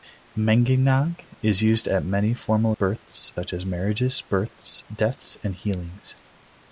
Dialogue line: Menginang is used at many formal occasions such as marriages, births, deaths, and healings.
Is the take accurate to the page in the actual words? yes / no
no